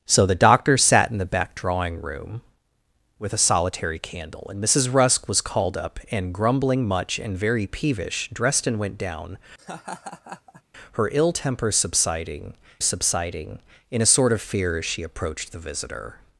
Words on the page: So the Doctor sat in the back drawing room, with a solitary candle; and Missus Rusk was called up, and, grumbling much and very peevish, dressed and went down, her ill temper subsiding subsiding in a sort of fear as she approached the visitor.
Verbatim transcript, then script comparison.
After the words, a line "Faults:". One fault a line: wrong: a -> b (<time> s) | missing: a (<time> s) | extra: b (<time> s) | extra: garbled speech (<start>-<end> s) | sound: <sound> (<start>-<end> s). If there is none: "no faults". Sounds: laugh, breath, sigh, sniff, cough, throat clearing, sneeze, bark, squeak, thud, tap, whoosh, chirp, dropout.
So the Doctor sat in the back drawing room, with a solitary candle; and Missus Rusk was called up, and, grumbling much and very peevish, dressed and went down, her ill temper subsiding subsiding in a sort of fear as she approached the visitor.
Faults:
sound: laugh (9.6-10.6 s)